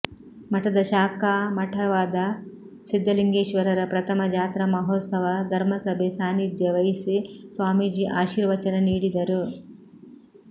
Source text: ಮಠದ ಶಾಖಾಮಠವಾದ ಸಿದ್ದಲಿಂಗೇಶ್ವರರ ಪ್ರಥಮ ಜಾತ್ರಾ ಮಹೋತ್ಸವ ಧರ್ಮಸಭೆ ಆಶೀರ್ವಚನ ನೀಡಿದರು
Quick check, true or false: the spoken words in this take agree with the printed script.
false